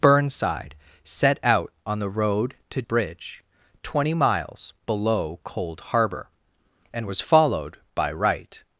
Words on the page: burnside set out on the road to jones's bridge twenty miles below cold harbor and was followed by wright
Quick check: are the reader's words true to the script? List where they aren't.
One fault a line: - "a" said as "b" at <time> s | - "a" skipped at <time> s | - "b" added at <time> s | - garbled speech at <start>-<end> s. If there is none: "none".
- "jones's" skipped at 2.8 s